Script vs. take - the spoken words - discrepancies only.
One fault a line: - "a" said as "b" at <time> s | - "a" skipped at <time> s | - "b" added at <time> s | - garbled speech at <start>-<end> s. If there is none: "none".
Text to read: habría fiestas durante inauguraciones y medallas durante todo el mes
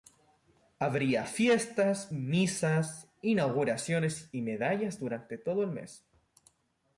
- "durante" said as "misas" at 2.1 s